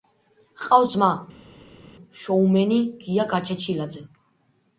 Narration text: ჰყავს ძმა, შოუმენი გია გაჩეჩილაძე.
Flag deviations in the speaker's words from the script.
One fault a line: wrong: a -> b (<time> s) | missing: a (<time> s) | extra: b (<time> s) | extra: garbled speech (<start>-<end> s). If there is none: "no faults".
no faults